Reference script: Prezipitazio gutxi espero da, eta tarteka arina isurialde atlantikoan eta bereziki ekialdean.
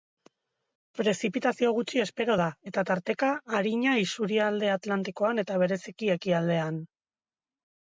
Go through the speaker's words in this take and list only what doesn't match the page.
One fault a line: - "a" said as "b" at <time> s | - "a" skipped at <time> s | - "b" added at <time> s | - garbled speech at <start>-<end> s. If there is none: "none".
none